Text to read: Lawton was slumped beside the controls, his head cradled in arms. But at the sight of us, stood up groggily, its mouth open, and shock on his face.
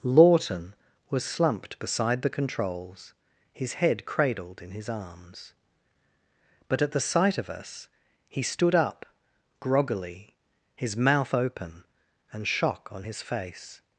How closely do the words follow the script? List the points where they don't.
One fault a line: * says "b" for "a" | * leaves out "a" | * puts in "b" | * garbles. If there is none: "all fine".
* puts in "his"
* puts in "he"
* says "his" for "its"